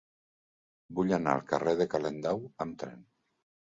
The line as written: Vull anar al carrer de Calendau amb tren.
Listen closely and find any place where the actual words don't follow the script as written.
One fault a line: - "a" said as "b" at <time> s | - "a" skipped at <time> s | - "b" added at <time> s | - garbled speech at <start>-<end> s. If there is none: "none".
none